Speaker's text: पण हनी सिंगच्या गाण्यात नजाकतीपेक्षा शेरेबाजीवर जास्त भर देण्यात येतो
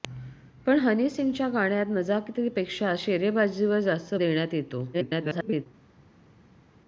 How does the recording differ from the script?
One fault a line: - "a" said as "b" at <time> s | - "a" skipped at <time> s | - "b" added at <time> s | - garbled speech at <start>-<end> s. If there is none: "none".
- "भर" skipped at 4.2 s
- garbled speech at 4.9-5.7 s